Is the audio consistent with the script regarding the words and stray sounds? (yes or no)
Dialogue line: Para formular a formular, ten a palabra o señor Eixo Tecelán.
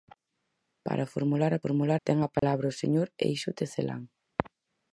no